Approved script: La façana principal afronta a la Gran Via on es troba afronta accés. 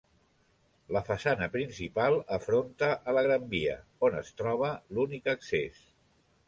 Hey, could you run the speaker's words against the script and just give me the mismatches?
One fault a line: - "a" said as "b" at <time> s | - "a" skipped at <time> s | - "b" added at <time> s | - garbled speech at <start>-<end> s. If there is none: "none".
- "afronta" said as "l'únic" at 5.0 s